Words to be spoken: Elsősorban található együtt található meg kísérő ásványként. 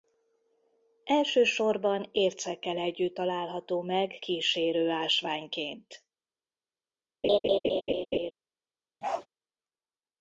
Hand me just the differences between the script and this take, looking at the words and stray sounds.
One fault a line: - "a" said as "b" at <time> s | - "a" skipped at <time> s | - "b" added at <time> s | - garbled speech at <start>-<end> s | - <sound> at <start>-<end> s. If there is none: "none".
- "található" said as "ércekkel" at 2.1 s
- laugh at 7.2-8.3 s
- bark at 9.0-9.3 s